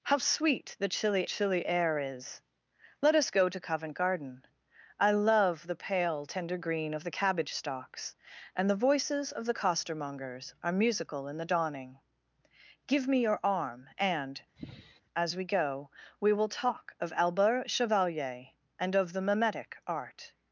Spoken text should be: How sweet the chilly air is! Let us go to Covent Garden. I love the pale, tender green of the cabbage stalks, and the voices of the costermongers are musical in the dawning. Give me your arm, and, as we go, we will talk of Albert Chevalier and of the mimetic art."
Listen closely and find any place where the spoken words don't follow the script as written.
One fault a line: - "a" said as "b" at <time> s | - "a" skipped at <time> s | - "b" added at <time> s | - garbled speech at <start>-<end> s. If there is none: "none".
- "chilly" added at 1.2 s